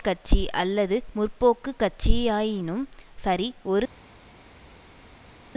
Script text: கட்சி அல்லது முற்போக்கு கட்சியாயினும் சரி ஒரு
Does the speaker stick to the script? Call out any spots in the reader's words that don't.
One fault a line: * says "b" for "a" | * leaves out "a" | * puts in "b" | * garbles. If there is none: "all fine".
all fine